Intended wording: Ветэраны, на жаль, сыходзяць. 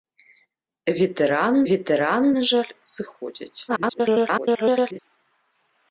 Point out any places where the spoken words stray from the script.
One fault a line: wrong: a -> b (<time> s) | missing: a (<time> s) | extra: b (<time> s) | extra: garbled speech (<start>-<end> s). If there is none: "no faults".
extra: ветэраны (1.7 s)
extra: garbled speech (3.7-5.0 s)